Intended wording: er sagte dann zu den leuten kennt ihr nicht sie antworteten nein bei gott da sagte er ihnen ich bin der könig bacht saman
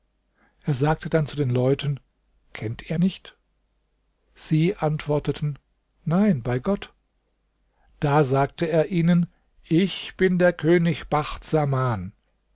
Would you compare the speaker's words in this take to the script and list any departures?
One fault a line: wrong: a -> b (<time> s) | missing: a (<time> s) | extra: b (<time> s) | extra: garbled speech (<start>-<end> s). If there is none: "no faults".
no faults